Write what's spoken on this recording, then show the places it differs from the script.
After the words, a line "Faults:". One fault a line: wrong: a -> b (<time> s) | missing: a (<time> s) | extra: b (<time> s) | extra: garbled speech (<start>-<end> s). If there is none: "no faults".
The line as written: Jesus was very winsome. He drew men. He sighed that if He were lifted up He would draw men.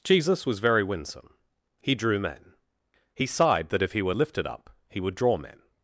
Jesus was very winsome. He drew men. He sighed that if He were lifted up He would draw men.
Faults:
no faults